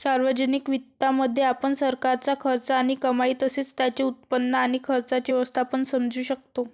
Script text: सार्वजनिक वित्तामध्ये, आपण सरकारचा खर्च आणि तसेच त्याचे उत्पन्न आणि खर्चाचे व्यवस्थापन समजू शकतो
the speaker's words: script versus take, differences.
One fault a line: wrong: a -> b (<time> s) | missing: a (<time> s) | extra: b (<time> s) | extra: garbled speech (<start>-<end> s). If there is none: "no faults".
extra: कमाई (3.0 s)